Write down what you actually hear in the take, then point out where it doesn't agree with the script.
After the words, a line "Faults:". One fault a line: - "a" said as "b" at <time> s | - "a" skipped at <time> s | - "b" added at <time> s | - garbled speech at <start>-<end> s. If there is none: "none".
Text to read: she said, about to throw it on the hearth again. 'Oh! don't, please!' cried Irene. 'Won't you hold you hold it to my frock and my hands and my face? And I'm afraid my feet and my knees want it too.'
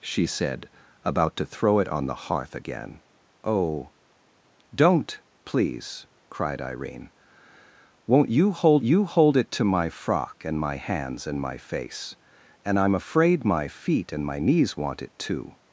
she said, about to throw it on the hearth again. 'Oh! don't, please!' cried Irene. 'Won't you hold you hold it to my frock and my hands and my face? And I'm afraid my feet and my knees want it too.'
Faults:
none